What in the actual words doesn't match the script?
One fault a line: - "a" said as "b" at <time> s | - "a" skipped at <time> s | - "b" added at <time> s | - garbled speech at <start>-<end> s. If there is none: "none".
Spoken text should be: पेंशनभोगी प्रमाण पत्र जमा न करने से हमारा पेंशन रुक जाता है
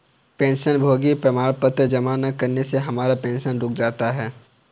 none